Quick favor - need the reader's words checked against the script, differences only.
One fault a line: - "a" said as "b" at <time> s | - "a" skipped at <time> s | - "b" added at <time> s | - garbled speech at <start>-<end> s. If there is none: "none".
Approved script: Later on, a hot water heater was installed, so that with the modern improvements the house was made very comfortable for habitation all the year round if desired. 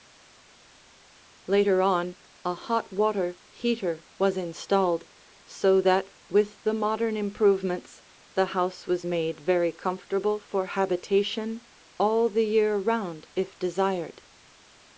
none